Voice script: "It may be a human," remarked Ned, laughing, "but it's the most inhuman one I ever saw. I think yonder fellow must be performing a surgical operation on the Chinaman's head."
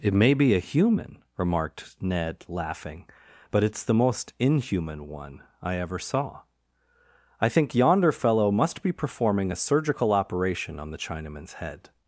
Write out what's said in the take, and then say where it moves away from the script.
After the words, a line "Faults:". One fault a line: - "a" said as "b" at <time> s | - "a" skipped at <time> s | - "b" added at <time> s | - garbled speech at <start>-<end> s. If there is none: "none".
"It may be a human," remarked Ned, laughing, "but it's the most inhuman one I ever saw. I think yonder fellow must be performing a surgical operation on the Chinaman's head."
Faults:
none